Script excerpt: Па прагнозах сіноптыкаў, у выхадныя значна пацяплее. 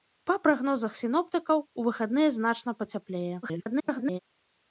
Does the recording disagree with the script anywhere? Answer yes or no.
yes